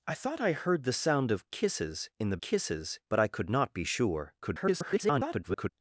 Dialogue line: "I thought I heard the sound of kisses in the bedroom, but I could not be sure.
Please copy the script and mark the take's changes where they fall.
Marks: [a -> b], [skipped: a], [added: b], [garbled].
"I thought I heard the sound of kisses in the [bedroom, -> kisses] but I could not be sure. [garbled]